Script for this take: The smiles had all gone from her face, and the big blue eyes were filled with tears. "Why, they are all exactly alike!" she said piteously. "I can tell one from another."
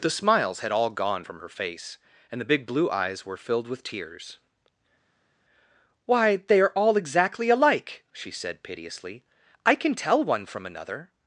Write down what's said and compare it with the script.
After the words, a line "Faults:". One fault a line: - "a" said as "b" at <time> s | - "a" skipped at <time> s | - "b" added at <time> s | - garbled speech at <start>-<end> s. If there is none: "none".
The smiles had all gone from her face, and the big blue eyes were filled with tears. "Why, they are all exactly alike!" she said piteously. "I can tell one from another."
Faults:
none